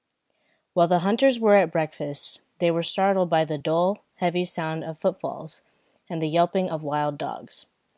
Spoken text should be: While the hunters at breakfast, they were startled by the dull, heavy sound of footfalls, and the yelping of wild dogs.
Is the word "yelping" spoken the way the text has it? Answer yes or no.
yes